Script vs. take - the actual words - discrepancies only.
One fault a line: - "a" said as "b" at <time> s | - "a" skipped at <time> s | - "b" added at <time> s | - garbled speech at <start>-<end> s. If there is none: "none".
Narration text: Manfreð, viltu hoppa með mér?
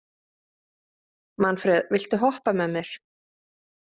none